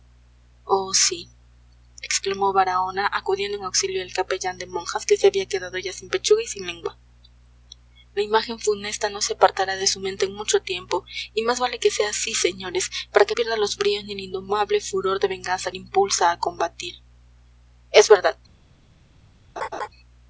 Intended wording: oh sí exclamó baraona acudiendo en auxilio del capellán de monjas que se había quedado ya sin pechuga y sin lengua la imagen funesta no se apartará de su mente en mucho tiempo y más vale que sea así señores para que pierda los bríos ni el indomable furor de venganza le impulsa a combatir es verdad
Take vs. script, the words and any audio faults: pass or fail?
fail